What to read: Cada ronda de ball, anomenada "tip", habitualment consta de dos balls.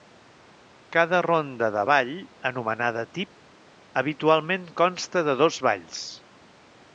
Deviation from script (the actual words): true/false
false